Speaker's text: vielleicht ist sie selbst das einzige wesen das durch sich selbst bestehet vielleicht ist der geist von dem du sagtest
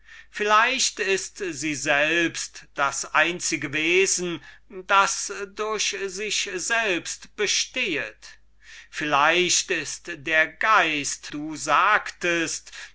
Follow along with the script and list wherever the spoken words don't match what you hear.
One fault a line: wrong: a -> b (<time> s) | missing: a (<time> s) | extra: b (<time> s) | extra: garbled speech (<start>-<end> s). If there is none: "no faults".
missing: von dem (11.3 s)